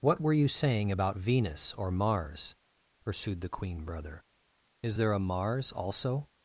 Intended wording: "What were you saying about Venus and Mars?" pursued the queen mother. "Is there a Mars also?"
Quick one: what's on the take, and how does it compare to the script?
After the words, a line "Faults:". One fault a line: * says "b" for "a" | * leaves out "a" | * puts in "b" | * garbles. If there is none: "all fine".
"What were you saying about Venus or Mars?" pursued the queen brother. "Is there a Mars also?"
Faults:
* says "or" for "and"
* says "brother" for "mother"